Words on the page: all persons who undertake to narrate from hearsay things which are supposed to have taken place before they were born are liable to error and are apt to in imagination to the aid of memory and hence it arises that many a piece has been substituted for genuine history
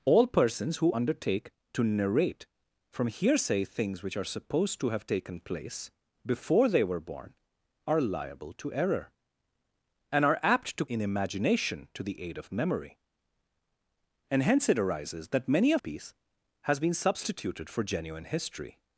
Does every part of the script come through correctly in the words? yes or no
yes